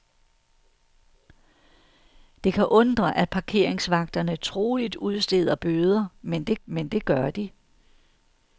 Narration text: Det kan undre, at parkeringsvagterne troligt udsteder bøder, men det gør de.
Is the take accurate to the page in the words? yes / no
no